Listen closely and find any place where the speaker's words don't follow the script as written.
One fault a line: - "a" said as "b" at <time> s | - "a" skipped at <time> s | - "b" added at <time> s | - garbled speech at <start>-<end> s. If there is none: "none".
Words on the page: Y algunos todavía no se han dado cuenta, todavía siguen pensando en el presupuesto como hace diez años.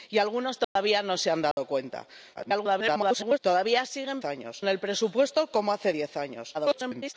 - garbled speech at 2.3-3.4 s
- "pensando" said as "años" at 4.2 s
- garbled speech at 6.5-7.1 s